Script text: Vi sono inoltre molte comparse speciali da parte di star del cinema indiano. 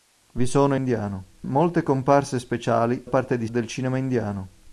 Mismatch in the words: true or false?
true